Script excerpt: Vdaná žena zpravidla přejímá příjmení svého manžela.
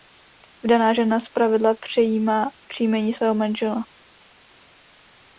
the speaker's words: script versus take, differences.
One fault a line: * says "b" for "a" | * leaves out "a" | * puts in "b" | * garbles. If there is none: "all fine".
all fine